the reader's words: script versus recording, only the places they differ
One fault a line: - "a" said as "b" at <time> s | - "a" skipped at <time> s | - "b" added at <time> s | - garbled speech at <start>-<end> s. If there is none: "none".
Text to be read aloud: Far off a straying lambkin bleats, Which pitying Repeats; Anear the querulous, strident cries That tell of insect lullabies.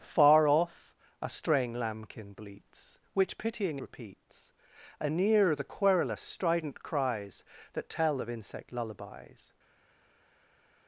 none